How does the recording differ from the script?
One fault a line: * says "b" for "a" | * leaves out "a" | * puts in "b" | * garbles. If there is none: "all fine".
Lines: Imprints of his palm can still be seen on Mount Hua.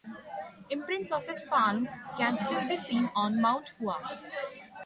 all fine